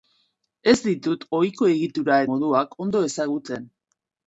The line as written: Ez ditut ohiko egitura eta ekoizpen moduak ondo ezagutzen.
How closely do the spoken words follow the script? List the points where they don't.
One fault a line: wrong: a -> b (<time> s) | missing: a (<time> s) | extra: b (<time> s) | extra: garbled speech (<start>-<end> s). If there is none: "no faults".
missing: eta ekoizpen (2.2 s)